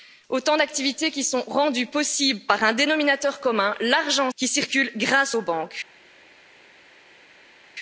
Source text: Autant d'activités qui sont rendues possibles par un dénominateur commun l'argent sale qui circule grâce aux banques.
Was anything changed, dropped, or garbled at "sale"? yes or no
yes